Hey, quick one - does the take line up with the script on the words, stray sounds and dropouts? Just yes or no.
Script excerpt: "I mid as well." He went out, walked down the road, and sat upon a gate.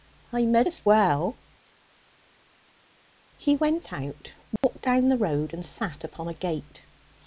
no